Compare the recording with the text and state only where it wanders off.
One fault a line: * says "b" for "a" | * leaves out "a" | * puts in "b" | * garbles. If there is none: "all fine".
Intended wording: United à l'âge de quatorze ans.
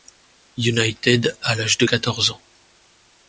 all fine